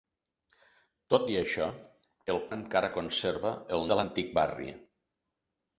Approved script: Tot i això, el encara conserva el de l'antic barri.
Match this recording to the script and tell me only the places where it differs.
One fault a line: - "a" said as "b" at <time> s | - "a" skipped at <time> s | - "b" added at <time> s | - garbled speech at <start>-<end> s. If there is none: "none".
none